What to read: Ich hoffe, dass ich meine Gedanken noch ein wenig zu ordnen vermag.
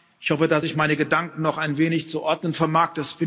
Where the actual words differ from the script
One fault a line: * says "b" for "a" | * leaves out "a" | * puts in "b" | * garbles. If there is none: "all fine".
all fine